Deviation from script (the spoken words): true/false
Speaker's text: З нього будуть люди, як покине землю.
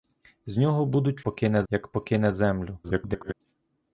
true